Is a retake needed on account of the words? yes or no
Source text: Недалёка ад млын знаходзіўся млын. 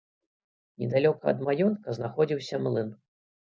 yes